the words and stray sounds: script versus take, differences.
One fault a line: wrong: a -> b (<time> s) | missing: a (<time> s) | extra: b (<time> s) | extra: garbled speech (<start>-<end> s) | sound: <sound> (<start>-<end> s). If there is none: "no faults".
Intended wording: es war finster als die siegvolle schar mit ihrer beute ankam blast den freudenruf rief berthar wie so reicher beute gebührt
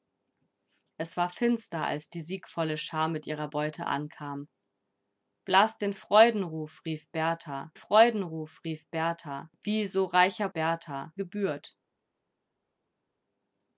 extra: freudenruf rief berthar (7.7 s)
wrong: beute -> berthar (10.5 s)